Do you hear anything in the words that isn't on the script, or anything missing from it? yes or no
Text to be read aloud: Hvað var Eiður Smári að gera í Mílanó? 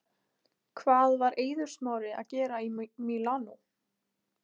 no